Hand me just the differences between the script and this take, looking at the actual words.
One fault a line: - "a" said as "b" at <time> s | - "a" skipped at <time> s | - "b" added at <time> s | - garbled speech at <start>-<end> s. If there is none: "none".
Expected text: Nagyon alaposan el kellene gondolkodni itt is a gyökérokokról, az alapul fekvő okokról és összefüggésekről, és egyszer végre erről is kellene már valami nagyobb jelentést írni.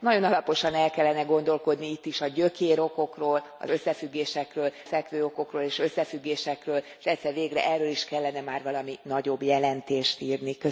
- "alapul" said as "összefüggésekről" at 3.7 s